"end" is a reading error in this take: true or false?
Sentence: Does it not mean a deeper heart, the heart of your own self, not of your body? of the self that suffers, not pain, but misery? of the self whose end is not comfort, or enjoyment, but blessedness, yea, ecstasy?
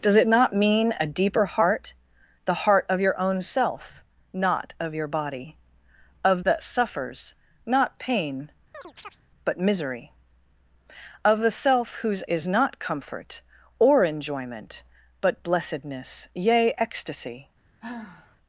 true